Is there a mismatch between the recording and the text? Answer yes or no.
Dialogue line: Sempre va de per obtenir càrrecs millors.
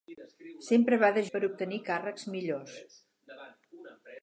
no